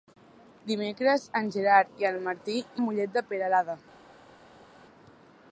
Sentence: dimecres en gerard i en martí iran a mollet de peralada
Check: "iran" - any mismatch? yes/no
yes